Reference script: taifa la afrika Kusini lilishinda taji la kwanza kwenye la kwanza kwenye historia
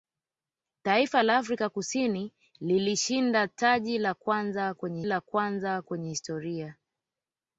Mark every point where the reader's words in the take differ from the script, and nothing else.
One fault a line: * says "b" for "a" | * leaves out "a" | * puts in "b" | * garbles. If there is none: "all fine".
all fine